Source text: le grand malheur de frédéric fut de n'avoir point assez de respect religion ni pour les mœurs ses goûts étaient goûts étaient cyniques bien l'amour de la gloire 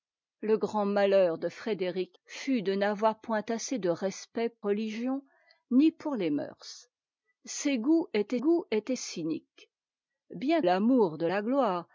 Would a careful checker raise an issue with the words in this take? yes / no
no